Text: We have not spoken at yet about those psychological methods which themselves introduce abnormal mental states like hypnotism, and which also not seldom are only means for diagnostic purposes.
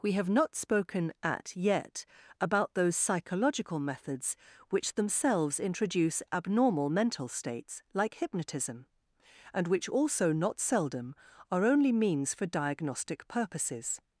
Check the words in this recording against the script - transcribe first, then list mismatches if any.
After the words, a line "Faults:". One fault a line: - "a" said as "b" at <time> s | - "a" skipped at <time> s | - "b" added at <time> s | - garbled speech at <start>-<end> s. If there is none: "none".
We have not spoken at yet about those psychological methods which themselves introduce abnormal mental states like hypnotism, and which also not seldom are only means for diagnostic purposes.
Faults:
none